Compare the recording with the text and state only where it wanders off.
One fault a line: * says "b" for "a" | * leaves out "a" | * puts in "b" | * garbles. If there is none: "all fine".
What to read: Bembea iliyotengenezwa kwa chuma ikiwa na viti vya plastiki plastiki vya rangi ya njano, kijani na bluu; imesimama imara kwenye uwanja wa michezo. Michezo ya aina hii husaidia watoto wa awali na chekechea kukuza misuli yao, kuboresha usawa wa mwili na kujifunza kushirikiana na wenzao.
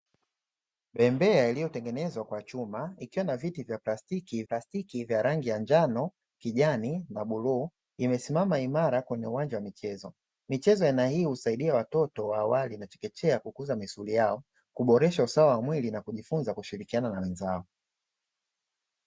all fine